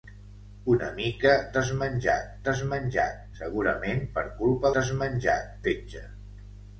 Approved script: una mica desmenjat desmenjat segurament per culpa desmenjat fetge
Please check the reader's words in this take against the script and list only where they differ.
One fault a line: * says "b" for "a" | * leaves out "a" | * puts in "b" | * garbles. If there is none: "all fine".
all fine